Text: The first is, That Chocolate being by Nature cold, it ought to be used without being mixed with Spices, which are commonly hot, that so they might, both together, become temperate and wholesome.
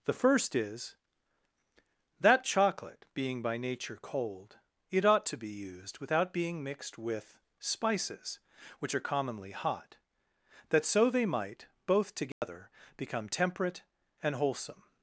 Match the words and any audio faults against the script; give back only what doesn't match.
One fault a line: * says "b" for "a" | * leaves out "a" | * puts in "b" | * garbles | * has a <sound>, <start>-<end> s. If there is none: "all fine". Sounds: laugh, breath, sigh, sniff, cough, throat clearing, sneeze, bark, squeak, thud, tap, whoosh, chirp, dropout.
* has a dropout, 12.3-12.4 s